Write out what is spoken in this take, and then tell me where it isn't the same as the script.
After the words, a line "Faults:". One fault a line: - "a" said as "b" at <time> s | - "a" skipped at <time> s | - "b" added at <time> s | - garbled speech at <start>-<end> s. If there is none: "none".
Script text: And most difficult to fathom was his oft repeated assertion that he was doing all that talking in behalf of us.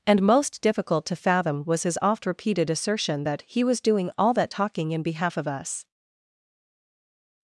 And most difficult to fathom was his oft repeated assertion that he was doing all that talking in behalf of us.
Faults:
none